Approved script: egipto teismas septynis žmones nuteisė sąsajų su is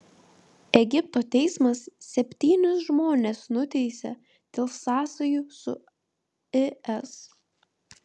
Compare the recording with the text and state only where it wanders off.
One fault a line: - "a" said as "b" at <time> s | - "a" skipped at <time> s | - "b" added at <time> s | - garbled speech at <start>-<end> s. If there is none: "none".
- "dėl" added at 4.6 s